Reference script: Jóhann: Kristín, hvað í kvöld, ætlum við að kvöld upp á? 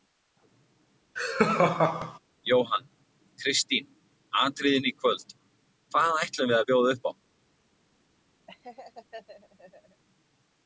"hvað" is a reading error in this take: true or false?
true